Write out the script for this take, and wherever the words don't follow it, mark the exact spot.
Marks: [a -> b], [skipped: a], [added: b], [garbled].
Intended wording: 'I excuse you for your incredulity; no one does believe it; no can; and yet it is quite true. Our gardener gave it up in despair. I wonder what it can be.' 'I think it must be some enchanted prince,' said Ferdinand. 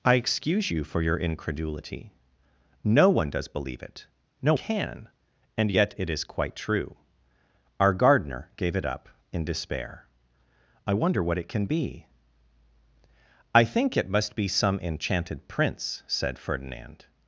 'I excuse you for your incredulity; no one does believe it; no can; and yet it is quite true. Our gardener gave it up in despair. I wonder what it can be.' 'I think it must be some enchanted prince,' said Ferdinand.